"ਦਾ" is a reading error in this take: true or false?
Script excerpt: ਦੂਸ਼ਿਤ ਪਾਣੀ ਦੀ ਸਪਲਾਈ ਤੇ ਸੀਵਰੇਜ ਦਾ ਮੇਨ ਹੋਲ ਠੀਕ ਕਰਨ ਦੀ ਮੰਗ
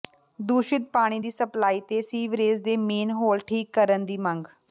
true